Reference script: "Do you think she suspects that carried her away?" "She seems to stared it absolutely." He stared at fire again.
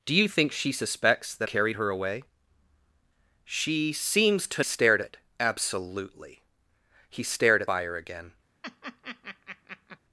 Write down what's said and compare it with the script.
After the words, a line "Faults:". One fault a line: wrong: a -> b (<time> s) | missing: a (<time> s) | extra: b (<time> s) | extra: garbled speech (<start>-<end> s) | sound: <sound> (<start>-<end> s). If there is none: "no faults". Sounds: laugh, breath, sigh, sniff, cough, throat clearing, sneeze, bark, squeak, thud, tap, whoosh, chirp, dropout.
"Do you think she suspects that carried her away?" "She seems to stared it absolutely." He stared at fire again.
Faults:
sound: laugh (8.6-10.0 s)